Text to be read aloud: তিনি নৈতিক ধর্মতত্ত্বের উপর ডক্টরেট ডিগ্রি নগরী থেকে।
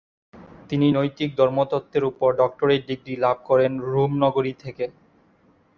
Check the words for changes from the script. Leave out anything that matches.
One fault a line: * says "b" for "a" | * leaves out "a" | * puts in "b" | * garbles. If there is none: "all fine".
* puts in "লাভ করেন রোম"